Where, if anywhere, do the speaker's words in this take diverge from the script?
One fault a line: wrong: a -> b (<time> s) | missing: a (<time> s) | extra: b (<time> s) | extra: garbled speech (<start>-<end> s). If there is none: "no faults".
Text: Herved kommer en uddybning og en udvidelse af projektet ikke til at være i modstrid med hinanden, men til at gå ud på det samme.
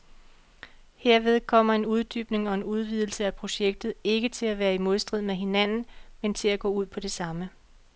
no faults